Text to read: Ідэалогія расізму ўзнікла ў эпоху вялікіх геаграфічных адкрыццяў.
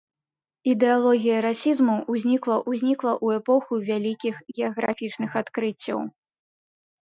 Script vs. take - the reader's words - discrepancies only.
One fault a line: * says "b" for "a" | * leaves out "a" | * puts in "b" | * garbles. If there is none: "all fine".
* puts in "ўзнікла"